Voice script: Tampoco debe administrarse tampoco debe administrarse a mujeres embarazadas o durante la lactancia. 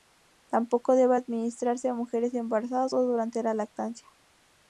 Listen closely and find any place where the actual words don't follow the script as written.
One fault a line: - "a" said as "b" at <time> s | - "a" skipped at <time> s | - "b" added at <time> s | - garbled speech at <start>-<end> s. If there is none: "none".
- "tampoco debe administrarse" skipped at 1.9 s